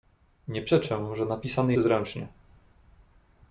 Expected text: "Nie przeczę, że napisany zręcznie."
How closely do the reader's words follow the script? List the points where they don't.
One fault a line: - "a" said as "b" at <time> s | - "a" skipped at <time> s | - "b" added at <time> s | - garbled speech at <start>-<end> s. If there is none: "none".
none